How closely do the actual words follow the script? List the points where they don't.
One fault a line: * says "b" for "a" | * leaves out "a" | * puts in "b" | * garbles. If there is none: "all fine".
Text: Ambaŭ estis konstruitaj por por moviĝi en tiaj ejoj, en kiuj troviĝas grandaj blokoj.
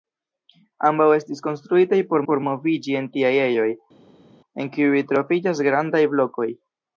all fine